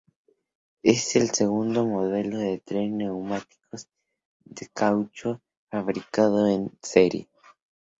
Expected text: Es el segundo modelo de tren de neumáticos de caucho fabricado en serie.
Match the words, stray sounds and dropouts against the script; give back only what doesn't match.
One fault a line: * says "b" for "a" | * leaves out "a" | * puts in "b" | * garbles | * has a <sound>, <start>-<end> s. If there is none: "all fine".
all fine